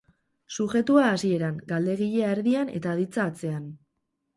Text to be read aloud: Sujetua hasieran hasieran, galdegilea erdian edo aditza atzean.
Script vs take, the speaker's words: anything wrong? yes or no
yes